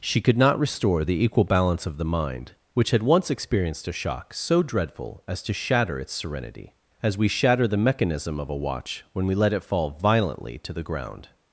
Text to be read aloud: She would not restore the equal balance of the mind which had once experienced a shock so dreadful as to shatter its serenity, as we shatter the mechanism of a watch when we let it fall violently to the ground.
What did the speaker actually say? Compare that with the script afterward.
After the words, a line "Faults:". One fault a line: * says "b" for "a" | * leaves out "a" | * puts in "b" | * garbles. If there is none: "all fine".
She could not restore the equal balance of the mind which had once experienced a shock so dreadful as to shatter its serenity, as we shatter the mechanism of a watch when we let it fall violently to the ground.
Faults:
* says "could" for "would"